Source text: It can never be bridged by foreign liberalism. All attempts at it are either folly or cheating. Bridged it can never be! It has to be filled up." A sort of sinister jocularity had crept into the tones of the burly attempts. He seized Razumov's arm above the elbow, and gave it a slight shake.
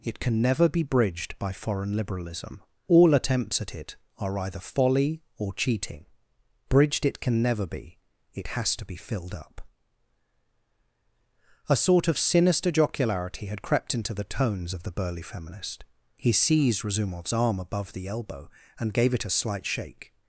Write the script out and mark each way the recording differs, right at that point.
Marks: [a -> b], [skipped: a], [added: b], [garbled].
It can never be bridged by foreign liberalism. All attempts at it are either folly or cheating. Bridged it can never be! It has to be filled up." A sort of sinister jocularity had crept into the tones of the burly [attempts. -> feminist] He seized Razumov's arm above the elbow, and gave it a slight shake.